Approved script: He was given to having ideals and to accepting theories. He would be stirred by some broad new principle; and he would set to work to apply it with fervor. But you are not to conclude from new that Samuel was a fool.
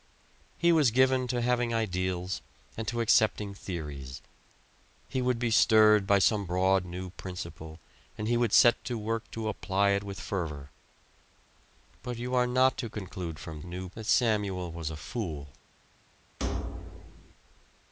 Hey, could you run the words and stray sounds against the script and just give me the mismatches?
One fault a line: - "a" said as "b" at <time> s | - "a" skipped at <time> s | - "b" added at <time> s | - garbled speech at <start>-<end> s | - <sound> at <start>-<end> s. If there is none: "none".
- thud at 16.4-17.3 s